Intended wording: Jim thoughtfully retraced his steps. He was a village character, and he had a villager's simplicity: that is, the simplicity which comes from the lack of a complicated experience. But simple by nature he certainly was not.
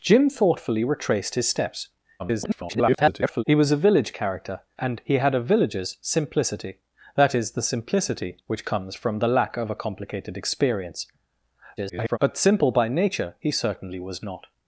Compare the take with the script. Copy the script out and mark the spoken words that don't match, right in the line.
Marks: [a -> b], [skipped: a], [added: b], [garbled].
Jim thoughtfully retraced his steps. [garbled] He was a village character, and he had a villager's simplicity: that is, the simplicity which comes from the lack of a complicated experience. [garbled] But simple by nature he certainly was not.